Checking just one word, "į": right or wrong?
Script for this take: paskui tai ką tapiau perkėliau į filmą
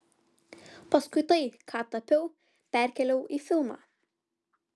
right